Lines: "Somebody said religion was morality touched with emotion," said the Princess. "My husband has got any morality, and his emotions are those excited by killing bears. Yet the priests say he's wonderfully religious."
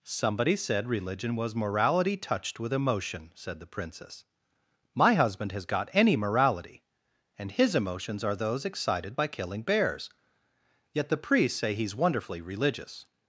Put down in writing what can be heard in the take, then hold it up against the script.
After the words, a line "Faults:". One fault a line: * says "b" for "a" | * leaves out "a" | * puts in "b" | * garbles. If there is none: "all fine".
"Somebody said religion was morality touched with emotion," said the Princess. "My husband has got any morality, and his emotions are those excited by killing bears. Yet the priests say he's wonderfully religious."
Faults:
all fine